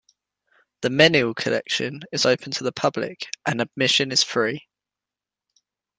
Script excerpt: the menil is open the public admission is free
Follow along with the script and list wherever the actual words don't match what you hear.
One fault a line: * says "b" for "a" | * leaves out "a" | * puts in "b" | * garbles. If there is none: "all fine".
* puts in "collection"
* puts in "to"
* puts in "and"